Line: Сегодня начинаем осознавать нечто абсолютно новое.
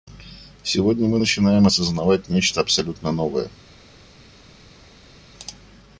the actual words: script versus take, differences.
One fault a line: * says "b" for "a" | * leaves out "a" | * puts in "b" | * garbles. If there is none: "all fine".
* puts in "мы"